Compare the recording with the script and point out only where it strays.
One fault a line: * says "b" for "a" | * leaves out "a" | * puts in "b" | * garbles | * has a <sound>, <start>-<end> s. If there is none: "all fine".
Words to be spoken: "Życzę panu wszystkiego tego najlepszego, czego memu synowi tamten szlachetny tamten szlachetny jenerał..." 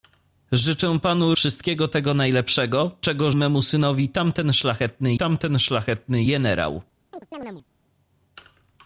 * has a chirp, 7.1-7.6 s